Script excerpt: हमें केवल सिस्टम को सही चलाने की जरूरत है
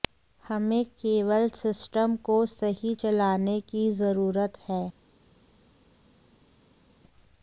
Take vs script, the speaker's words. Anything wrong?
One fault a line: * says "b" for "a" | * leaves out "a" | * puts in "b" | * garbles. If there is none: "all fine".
all fine